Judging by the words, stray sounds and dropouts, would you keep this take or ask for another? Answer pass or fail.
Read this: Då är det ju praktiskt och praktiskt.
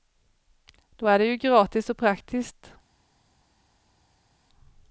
fail